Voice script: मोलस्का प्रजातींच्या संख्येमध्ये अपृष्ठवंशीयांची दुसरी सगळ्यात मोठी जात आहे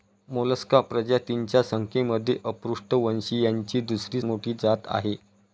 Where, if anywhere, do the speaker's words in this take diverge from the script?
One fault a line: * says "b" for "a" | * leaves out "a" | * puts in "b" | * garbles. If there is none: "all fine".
* leaves out "सगळ्यात"